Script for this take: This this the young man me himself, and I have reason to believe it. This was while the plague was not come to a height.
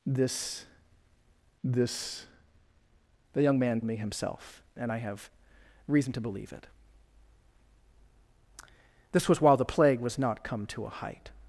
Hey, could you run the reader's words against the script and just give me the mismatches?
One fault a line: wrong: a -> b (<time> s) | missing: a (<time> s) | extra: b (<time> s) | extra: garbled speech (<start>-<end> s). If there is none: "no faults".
no faults